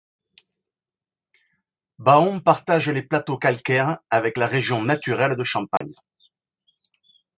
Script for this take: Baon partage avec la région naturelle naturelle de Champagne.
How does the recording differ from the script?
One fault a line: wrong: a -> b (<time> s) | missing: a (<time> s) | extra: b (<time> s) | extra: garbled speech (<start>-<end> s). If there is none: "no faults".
extra: les plateaux calcaires (2.9 s)
missing: naturelle (5.3 s)